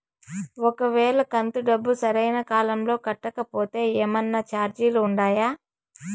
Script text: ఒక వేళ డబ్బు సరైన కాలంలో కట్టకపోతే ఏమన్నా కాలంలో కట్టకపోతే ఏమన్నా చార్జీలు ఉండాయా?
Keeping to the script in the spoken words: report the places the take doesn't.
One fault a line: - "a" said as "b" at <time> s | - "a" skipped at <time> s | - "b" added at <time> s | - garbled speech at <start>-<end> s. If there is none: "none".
- "కంతు" added at 1.3 s
- "కాలంలో కట్టకపోతే ఏమన్నా" skipped at 4.4 s